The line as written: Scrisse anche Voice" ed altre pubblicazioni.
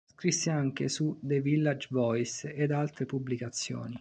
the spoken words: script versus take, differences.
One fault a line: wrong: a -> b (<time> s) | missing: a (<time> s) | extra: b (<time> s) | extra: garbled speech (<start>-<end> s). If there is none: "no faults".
extra: su The Village (0.9 s)